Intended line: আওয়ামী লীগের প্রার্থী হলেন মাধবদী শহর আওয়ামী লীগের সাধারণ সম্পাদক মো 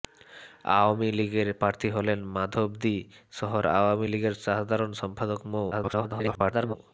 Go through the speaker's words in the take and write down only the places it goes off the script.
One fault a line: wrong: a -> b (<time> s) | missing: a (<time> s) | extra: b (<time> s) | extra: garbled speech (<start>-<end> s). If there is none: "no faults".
extra: garbled speech (5.7-6.7 s)